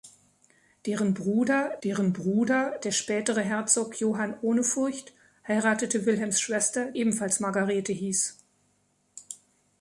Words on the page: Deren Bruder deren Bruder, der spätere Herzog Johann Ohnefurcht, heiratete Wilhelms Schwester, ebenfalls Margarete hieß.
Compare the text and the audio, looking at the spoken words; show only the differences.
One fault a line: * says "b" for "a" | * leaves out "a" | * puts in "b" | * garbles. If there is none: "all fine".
all fine